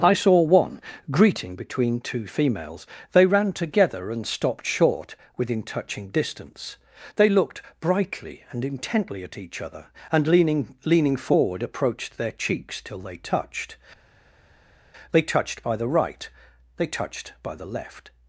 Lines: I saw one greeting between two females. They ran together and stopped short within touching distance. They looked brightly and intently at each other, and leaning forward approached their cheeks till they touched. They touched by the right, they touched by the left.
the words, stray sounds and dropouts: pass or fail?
fail